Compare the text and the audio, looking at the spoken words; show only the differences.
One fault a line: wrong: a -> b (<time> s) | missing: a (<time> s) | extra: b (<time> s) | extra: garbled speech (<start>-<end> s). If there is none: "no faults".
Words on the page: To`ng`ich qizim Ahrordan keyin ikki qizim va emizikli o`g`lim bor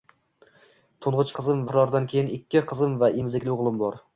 no faults